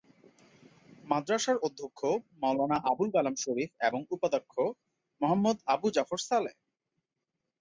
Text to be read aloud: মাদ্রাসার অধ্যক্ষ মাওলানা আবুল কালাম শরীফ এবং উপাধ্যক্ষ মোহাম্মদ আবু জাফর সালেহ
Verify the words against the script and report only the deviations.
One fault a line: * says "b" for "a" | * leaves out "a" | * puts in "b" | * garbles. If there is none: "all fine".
all fine